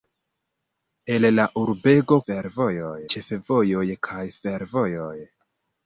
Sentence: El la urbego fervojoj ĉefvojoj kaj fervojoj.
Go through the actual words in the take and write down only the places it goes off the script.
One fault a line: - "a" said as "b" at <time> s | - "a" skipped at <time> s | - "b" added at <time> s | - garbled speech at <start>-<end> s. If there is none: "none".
none